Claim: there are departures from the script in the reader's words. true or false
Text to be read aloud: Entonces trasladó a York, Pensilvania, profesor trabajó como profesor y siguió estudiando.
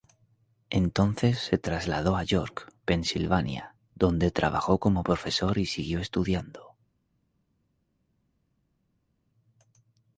true